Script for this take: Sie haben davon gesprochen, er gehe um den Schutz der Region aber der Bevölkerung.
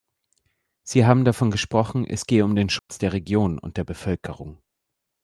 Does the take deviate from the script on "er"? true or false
true